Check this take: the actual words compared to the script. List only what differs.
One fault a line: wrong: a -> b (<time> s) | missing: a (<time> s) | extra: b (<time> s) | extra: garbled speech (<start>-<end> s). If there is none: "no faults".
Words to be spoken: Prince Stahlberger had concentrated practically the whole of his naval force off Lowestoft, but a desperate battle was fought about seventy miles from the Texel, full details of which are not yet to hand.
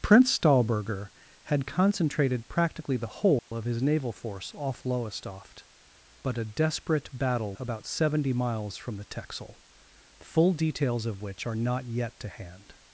missing: was fought (7.5 s)